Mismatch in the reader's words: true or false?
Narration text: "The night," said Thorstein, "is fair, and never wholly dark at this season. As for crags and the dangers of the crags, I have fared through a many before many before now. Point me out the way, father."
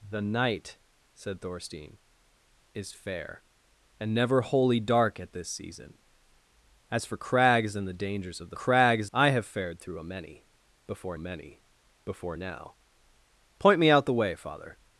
false